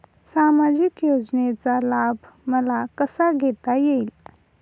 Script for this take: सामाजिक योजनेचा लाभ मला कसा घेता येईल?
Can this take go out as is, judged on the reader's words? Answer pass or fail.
pass